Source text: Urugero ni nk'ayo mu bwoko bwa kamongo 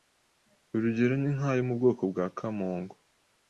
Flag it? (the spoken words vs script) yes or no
no